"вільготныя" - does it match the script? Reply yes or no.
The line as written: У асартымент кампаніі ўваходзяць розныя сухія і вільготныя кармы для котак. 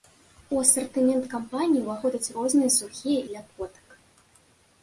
no